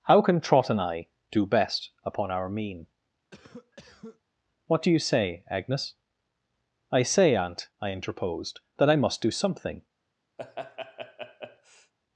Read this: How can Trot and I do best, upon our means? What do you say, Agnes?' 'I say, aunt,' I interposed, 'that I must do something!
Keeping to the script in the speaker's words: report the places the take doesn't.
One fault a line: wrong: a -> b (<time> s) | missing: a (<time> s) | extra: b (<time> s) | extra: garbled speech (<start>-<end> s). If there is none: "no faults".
wrong: means -> mean (2.5 s)